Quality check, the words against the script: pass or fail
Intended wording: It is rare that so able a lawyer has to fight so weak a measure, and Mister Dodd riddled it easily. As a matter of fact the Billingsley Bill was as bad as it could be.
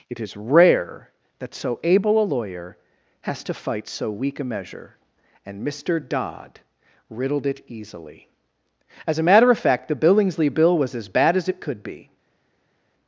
pass